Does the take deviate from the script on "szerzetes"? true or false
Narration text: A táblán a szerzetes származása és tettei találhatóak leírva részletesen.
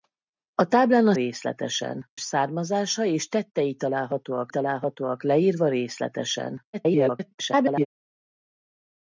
true